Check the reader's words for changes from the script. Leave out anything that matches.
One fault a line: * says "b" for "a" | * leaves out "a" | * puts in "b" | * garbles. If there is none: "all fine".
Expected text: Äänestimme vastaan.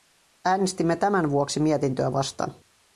* puts in "tämän vuoksi mietintöä"